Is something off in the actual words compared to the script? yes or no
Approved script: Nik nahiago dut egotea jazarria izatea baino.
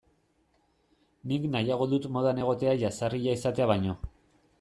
yes